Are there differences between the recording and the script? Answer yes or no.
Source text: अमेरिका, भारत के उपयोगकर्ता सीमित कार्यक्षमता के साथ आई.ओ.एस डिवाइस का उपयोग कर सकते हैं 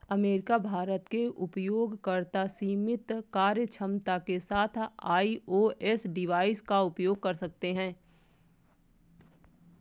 no